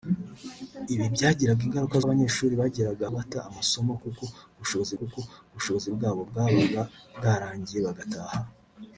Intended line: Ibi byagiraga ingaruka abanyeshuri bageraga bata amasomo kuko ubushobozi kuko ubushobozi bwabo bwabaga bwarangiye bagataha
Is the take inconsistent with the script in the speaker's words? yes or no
no